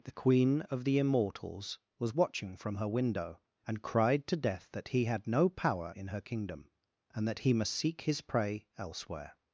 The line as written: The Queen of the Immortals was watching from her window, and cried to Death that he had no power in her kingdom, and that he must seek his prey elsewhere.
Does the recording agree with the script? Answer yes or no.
yes